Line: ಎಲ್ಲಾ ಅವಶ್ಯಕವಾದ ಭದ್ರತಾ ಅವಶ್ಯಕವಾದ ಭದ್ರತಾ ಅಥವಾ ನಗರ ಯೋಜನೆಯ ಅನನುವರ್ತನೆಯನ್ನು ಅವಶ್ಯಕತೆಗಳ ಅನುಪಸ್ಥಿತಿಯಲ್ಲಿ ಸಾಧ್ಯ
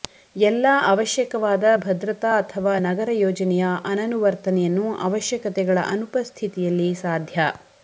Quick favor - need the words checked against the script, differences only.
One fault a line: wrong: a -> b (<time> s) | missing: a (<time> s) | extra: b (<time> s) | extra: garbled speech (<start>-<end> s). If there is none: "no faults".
missing: ಅವಶ್ಯಕವಾದ ಭದ್ರತಾ (2.3 s)